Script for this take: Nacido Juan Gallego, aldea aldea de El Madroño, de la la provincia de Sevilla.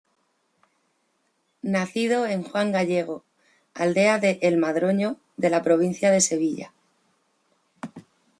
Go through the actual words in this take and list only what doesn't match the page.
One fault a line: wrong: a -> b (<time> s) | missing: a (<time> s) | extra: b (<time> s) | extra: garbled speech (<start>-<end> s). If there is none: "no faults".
extra: en (2.2 s)
missing: aldea (4.2 s)
missing: la (5.6 s)